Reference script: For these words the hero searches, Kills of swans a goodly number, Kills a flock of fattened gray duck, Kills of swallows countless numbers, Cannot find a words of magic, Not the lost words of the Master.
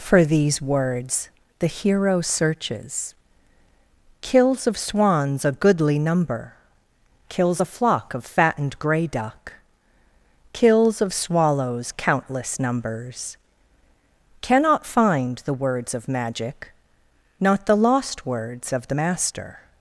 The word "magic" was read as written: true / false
true